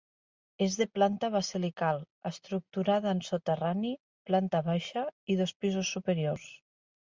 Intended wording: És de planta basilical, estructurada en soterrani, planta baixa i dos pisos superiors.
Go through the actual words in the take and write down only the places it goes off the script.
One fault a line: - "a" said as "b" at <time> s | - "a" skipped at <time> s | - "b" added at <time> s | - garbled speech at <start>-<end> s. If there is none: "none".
none